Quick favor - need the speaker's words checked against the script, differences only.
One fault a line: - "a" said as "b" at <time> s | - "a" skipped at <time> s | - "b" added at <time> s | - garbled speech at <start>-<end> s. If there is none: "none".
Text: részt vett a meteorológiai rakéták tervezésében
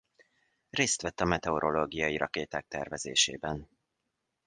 none